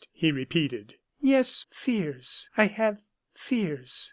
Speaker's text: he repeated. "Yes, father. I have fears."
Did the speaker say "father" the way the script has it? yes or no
no